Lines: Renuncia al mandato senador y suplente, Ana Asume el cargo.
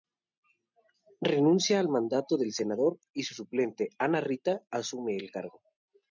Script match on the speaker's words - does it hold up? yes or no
no